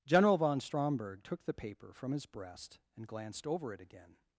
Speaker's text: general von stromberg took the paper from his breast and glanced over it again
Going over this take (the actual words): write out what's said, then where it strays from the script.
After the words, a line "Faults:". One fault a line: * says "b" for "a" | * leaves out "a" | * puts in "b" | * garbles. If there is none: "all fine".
general von stromberg took the paper from his breast and glanced over it again
Faults:
all fine